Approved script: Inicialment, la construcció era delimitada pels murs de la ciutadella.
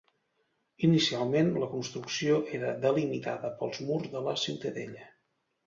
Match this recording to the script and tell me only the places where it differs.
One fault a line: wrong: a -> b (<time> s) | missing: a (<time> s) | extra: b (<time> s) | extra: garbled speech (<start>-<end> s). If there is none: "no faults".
no faults